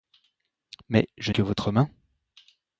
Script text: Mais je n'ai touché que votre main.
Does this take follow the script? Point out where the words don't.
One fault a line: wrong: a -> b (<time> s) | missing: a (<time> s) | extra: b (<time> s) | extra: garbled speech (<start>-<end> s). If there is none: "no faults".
missing: n'ai touché (1.3 s)